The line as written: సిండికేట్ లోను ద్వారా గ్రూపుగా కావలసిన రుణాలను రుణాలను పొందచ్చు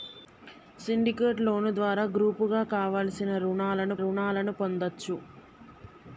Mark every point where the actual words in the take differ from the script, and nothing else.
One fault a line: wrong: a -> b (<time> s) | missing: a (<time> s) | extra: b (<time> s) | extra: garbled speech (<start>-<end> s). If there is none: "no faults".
no faults